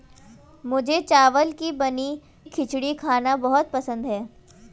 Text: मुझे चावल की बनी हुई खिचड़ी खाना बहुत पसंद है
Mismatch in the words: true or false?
true